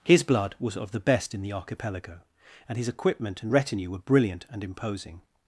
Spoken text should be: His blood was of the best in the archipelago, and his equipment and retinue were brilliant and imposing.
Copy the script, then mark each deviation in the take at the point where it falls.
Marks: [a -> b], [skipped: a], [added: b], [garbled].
His blood was of the best in the archipelago, and his equipment and retinue were brilliant and imposing.